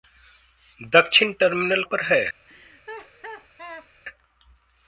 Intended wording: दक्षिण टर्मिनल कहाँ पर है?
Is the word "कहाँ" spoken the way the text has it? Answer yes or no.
no